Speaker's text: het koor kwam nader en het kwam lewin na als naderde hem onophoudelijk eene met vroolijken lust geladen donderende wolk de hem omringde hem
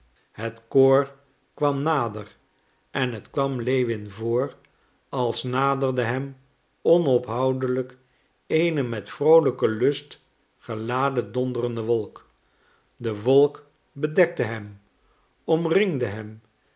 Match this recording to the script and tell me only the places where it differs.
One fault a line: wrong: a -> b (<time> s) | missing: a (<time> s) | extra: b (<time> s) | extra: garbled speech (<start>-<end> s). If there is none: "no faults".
wrong: na -> voor (4.1 s)
extra: wolk bedekte (13.2 s)